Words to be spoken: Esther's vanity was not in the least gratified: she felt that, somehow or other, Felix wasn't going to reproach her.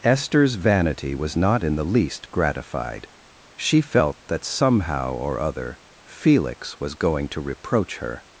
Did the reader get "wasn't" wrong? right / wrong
wrong